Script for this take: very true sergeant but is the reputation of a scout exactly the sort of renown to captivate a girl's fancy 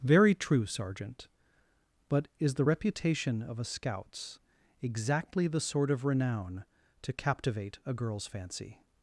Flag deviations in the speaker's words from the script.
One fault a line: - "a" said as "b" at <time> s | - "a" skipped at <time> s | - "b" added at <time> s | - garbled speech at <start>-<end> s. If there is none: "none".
- "scout" said as "scouts" at 3.6 s